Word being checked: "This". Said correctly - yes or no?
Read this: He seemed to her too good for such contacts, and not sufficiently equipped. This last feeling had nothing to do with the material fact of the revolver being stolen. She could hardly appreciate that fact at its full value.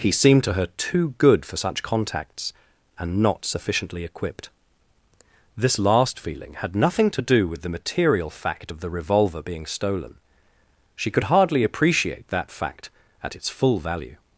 yes